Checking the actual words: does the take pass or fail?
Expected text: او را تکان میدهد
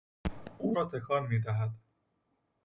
pass